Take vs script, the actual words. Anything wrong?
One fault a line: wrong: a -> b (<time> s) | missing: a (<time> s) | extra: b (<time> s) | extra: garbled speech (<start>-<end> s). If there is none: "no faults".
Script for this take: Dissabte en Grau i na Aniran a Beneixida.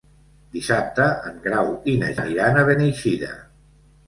no faults